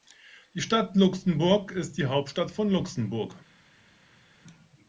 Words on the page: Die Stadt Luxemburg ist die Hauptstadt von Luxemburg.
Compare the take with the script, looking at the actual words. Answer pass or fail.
pass